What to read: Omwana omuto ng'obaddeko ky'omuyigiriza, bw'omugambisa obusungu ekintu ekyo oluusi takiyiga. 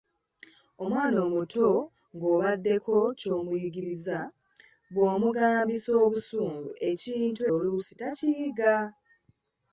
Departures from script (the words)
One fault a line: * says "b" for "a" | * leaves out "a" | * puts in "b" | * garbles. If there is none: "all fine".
* leaves out "ekyo"